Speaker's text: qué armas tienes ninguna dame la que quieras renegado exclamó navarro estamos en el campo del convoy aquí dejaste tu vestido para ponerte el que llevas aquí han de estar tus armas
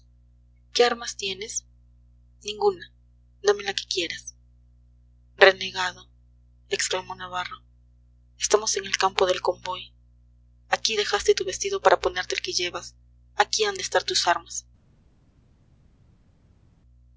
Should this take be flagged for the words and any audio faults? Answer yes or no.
no